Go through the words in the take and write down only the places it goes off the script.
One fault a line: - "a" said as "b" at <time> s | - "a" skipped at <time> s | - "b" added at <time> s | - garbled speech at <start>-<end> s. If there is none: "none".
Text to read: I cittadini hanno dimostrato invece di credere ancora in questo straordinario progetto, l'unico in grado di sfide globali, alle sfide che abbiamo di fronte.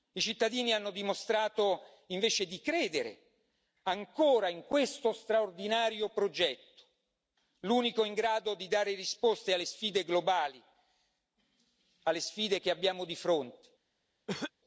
- "dare risposte alle" added at 8.7 s